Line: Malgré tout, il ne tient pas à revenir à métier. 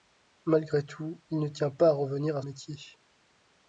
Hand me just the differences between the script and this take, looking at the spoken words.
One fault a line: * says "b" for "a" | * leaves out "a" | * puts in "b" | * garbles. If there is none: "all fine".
all fine